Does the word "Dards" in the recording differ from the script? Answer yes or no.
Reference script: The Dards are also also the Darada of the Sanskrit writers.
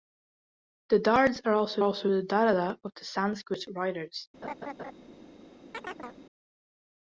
no